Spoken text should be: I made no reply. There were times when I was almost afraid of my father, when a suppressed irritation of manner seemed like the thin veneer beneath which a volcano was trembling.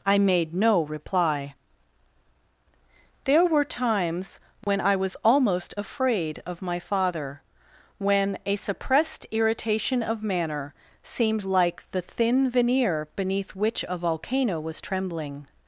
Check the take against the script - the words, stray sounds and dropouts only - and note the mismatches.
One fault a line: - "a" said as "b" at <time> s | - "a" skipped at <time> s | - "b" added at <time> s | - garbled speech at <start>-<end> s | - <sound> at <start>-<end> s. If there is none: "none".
- dropout at 4.6-4.7 s